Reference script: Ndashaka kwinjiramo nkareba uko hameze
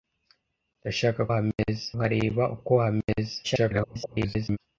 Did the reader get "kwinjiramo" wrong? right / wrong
wrong